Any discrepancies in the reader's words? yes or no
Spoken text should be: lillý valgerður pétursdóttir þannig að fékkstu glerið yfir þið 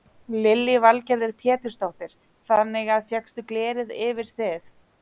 no